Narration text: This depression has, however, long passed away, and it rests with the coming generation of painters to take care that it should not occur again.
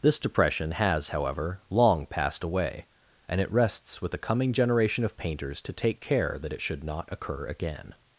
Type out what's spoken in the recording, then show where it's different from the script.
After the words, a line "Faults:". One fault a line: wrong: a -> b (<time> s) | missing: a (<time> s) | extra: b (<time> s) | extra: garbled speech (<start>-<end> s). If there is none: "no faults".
This depression has, however, long passed away, and it rests with the coming generation of painters to take care that it should not occur again.
Faults:
no faults